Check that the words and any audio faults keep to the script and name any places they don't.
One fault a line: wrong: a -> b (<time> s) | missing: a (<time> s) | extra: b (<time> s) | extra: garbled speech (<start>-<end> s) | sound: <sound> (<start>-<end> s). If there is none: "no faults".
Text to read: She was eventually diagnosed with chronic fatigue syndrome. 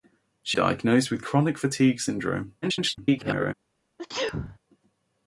missing: was eventually (0.6 s)
extra: garbled speech (2.6-3.5 s)
sound: sneeze (4.0-4.6 s)